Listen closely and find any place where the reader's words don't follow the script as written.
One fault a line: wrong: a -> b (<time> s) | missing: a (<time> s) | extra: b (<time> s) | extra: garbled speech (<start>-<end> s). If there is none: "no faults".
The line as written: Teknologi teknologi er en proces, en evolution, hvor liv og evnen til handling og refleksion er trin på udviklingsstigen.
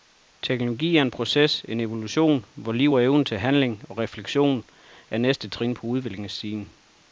missing: teknologi (1.0 s)
extra: næste (5.2 s)